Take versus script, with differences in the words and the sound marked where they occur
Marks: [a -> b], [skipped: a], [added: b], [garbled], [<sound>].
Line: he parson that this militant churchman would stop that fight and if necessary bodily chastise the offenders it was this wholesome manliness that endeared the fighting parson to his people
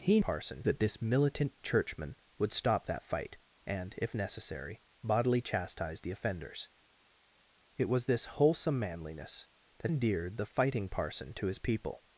he parson that this militant churchman would stop that fight and if necessary bodily chastise the offenders it was this wholesome manliness that endeared the fighting parson to his people